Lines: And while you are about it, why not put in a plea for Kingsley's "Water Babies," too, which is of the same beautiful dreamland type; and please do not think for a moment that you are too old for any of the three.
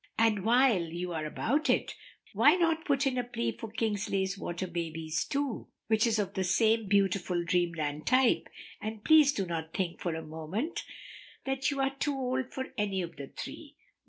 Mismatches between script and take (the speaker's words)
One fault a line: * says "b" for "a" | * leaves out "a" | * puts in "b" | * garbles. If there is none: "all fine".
all fine